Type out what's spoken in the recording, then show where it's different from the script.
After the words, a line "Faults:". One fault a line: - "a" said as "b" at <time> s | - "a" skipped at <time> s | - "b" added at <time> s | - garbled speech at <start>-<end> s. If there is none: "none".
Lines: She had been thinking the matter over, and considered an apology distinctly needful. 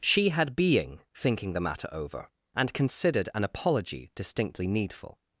She had being thinking the matter over, and considered an apology distinctly needful.
Faults:
- "been" said as "being" at 0.6 s